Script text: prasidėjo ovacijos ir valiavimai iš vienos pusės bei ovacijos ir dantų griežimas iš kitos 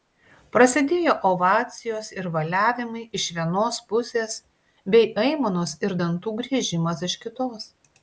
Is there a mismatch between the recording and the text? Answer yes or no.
yes